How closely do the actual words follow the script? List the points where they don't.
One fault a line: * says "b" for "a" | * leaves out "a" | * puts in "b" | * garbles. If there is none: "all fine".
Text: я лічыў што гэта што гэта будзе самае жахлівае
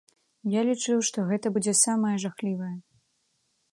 * leaves out "што гэта"